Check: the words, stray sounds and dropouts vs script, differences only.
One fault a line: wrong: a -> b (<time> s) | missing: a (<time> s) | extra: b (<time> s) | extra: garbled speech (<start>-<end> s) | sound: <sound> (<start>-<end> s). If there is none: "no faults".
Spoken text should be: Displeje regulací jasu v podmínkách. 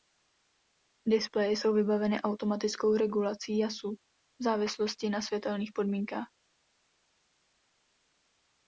extra: jsou vybaveny automatickou (1.5 s)
extra: závislosti na světelných (4.4 s)